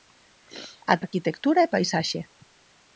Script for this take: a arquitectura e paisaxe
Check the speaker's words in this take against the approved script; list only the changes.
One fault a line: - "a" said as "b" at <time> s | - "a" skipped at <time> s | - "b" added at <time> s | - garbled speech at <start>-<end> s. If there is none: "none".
none